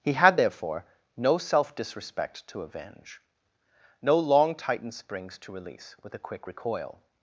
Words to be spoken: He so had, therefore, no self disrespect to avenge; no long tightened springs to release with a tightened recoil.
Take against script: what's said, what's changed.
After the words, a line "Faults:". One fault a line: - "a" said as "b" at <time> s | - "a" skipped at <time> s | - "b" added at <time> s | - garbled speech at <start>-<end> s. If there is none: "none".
He had, therefore, no self disrespect to avenge; no long tightened springs to release with a quick recoil.
Faults:
- "so" skipped at 0.1 s
- "tightened" said as "quick" at 6.2 s